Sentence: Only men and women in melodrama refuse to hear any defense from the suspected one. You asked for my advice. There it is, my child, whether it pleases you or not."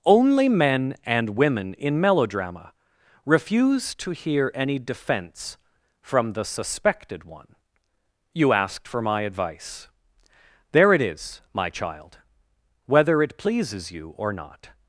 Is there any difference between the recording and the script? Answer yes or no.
no